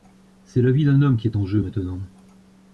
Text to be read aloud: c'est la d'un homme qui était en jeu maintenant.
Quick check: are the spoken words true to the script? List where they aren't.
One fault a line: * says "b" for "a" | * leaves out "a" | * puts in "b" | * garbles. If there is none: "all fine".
* puts in "vie"
* says "est" for "était"